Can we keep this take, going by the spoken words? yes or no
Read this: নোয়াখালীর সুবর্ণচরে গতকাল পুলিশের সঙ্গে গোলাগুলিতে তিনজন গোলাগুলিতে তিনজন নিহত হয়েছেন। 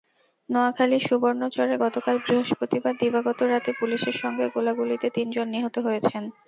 no